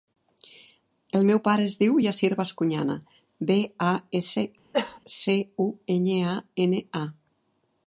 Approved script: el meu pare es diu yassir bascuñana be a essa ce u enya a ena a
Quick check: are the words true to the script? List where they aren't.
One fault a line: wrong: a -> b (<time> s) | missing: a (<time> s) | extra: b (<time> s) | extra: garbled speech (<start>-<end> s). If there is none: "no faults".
no faults